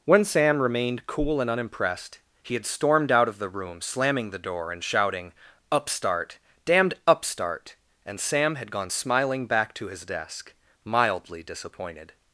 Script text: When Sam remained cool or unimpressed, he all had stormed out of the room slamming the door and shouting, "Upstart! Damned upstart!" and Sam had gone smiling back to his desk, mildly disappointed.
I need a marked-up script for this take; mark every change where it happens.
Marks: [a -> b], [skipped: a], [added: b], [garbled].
When Sam remained cool [or -> and] unimpressed, he [skipped: all] had stormed out of the room slamming the door and shouting, "Upstart! Damned upstart!" and Sam had gone smiling back to his desk, mildly disappointed.